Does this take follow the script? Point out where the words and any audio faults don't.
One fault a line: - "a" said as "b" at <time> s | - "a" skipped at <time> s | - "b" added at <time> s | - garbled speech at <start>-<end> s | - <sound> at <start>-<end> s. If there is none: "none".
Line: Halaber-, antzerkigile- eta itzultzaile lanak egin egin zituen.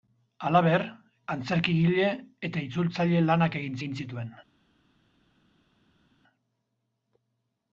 none